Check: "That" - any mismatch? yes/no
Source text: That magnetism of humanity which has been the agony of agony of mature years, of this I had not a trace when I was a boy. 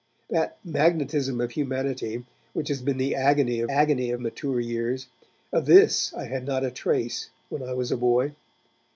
no